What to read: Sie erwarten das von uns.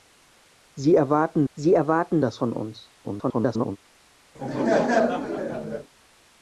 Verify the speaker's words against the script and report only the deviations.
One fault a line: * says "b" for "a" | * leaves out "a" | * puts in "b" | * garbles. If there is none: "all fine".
* puts in "sie erwarten"
* garbles